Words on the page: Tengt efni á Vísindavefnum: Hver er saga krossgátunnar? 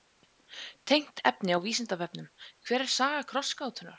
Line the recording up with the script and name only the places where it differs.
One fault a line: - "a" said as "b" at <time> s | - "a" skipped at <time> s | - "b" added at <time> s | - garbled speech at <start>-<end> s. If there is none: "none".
none